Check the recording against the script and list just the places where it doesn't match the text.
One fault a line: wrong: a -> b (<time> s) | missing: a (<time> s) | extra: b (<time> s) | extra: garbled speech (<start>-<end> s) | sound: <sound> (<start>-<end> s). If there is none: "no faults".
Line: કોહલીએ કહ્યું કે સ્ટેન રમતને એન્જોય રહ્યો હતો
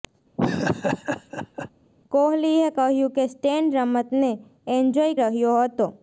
sound: laugh (0.4-1.7 s)